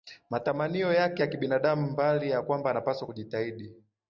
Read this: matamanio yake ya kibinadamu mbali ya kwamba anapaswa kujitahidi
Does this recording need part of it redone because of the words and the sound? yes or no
no